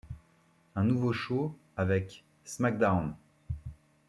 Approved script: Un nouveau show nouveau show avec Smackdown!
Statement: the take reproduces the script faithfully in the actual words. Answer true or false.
false